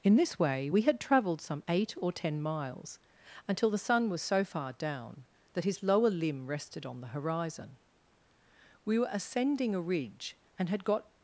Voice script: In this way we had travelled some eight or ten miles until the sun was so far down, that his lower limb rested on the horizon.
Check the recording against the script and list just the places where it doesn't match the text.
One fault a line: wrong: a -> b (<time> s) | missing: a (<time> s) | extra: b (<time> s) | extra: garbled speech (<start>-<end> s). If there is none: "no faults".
extra: We were ascending a ridge and had got (8.8 s)